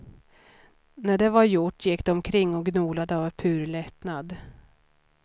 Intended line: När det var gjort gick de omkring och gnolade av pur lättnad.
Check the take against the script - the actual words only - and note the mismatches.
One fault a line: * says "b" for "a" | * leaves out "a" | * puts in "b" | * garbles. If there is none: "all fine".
all fine